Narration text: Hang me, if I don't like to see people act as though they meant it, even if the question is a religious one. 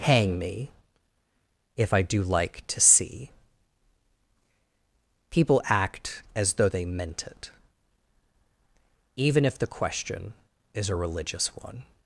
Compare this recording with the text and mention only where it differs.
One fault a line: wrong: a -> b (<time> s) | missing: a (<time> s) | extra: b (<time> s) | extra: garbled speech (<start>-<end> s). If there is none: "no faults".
wrong: don't -> do (2.0 s)